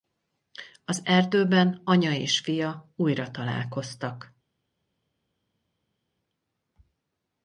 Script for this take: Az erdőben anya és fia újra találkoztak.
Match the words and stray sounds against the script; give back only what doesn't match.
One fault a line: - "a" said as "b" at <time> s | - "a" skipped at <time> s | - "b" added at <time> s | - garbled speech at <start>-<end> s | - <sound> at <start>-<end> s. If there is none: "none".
none